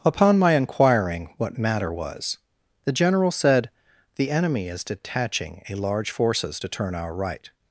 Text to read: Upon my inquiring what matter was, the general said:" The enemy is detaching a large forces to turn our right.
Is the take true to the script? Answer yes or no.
yes